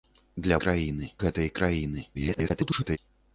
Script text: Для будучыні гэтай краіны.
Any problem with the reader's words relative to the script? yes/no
yes